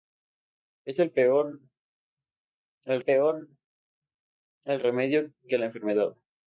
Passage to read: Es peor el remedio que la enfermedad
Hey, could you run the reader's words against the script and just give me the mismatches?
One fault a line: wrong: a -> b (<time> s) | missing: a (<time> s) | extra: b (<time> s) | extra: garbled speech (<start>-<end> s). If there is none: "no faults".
extra: peor el (3.0 s)